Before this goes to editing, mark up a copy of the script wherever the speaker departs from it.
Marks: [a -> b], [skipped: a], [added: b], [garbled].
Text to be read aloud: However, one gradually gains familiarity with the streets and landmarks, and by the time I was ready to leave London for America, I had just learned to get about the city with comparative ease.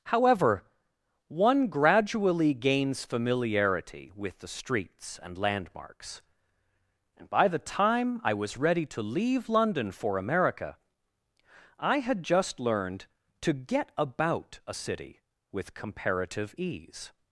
However, one gradually gains familiarity with the streets and landmarks, and by the time I was ready to leave London for America, I had just learned to get about [the -> a] city with comparative ease.